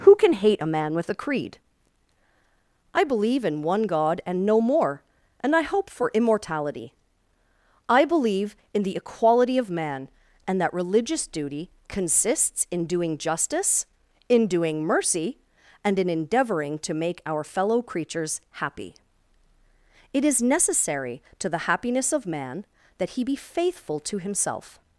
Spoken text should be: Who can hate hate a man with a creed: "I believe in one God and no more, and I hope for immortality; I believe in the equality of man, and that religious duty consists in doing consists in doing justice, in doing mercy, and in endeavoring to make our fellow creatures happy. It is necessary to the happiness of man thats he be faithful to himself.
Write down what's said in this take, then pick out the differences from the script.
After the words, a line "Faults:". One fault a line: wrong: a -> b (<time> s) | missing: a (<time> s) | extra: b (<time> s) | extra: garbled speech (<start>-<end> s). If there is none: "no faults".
Who can hate a man with a creed: "I believe in one God and no more, and I hope for immortality; I believe in the equality of man, and that religious duty consists in doing justice, in doing mercy, and in endeavoring to make our fellow creatures happy. It is necessary to the happiness of man that he be faithful to himself.
Faults:
missing: hate (0.6 s)
missing: consists in doing (13.2 s)
wrong: thats -> that (23.0 s)